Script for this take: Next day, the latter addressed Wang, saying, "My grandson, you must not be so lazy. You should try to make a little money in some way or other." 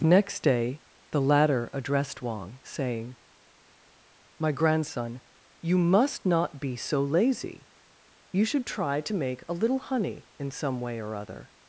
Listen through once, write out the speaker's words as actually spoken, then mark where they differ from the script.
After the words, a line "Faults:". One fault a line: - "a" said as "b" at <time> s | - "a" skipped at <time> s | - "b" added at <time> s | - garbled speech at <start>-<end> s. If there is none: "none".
Next day, the latter addressed Wang, saying, "My grandson, you must not be so lazy. You should try to make a little honey in some way or other."
Faults:
- "money" said as "honey" at 9.8 s